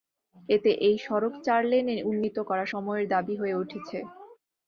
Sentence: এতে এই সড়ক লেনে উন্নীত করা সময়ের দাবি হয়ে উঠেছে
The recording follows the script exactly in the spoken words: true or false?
false